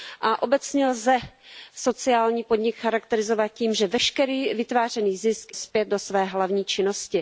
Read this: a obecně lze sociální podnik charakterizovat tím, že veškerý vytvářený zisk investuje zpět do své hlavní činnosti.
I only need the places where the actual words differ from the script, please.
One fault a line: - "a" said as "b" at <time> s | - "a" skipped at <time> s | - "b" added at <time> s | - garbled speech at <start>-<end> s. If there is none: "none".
- "investuje" skipped at 5.5 s